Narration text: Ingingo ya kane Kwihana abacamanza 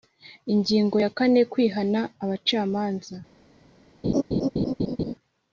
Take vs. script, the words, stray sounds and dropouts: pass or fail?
fail